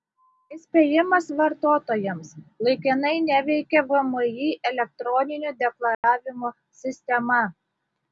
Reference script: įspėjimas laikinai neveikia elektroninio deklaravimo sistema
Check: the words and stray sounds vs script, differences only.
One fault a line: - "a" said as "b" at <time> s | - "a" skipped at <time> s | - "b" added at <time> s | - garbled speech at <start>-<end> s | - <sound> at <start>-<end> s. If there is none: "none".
- "vartotojams" added at 1.4 s
- "vmi" added at 3.9 s
- dropout at 5.9-6.0 s